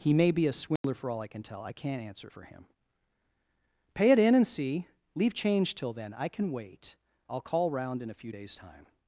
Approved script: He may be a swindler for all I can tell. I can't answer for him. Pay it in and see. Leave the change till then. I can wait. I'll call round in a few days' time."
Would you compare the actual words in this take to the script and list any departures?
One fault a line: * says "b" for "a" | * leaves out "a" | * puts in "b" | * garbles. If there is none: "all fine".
* leaves out "the"